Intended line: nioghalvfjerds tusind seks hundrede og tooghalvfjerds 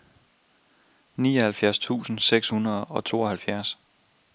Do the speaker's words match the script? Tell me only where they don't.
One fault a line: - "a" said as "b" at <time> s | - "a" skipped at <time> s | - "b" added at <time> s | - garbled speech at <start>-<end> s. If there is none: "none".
none